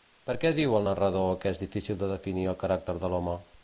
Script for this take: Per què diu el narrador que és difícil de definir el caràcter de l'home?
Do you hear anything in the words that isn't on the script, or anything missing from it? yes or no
no